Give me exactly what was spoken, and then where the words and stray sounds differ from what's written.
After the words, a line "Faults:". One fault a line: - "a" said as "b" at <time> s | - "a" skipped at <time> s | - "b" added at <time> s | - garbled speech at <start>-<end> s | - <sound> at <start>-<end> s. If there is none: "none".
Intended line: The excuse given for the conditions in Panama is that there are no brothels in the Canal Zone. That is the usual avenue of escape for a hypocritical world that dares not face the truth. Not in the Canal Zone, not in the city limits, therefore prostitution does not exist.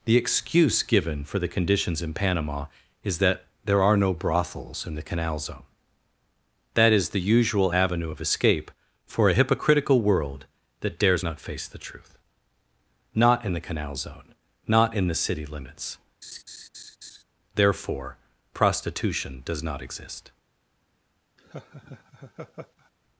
The excuse given for the conditions in Panama is that there are no brothels in the Canal Zone. That is the usual avenue of escape for a hypocritical world that dares not face the truth. Not in the Canal Zone, not in the city limits, therefore prostitution does not exist.
Faults:
- laugh at 16.2-17.2 s
- laugh at 21.4-22.9 s